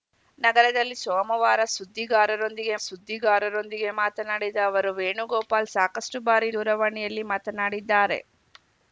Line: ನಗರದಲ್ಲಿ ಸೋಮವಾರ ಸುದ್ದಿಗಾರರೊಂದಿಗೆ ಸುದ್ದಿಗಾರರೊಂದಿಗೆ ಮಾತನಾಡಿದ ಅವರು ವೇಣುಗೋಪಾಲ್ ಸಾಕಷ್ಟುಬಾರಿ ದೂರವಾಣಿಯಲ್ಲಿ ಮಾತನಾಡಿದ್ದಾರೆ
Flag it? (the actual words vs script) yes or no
no